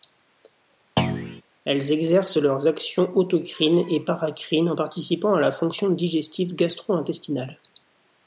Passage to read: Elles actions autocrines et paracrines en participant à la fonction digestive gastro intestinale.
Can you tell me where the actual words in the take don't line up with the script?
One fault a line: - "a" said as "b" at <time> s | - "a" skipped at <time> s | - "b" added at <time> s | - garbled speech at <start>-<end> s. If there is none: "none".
- "exercent leurs" added at 1.9 s